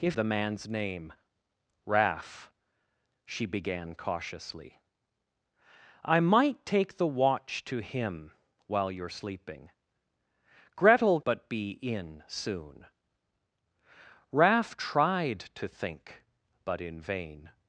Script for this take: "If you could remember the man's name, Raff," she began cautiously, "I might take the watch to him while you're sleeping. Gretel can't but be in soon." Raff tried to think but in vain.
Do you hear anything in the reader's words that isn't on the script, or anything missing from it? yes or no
yes